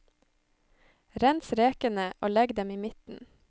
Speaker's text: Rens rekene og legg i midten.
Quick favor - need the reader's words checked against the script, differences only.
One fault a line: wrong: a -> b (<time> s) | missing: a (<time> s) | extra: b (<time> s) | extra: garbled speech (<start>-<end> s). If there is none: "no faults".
extra: dem (2.6 s)